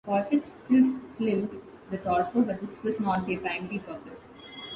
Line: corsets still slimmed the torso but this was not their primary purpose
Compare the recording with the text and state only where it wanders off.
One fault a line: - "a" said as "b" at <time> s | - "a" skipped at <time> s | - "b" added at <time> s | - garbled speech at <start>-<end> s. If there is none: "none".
none